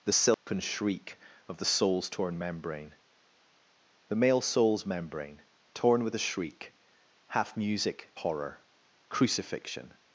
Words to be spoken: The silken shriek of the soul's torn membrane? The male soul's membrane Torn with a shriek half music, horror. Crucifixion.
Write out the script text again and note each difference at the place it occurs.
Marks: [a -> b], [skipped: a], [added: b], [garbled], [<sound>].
The silken [dropout] shriek of the soul's torn membrane? The male soul's membrane Torn with a shriek half music, horror. Crucifixion.